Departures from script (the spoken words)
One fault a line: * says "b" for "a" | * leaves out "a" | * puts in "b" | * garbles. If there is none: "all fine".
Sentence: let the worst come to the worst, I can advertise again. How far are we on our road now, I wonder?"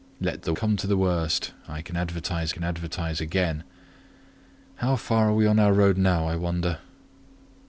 * leaves out "worst"
* puts in "can advertise"